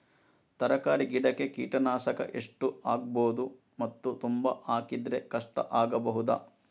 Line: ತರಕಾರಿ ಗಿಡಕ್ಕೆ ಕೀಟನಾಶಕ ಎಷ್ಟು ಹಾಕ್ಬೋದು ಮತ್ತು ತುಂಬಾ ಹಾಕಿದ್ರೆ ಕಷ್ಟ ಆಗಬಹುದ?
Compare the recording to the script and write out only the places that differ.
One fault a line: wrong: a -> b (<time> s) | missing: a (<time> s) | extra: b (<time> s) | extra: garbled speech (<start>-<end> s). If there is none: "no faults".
no faults